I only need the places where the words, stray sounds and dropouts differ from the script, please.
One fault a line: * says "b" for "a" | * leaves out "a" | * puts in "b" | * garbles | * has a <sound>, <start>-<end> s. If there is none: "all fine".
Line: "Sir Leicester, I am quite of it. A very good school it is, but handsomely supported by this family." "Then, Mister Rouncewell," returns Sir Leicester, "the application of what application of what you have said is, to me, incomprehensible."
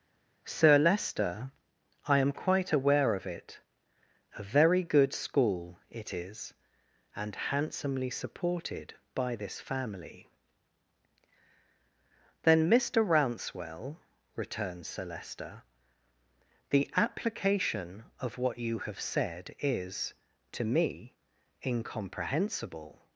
* puts in "aware"
* says "and" for "but"
* leaves out "application of what"